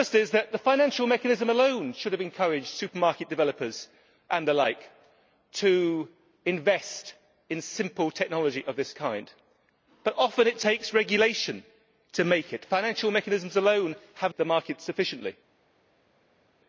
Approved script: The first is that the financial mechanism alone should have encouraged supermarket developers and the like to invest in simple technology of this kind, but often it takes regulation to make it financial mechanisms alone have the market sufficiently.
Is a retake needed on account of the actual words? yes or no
no